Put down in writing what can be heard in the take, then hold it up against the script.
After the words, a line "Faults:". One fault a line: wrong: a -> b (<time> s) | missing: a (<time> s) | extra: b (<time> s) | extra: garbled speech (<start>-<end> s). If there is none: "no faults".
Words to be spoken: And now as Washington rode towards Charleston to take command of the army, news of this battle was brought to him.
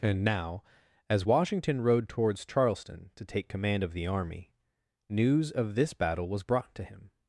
And now as Washington rode towards Charleston to take command of the army, news of this battle was brought to him.
Faults:
no faults